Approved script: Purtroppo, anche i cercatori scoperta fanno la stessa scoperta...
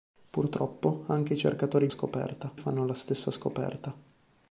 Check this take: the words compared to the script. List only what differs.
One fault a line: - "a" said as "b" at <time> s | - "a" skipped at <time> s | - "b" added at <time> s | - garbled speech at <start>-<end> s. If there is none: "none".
none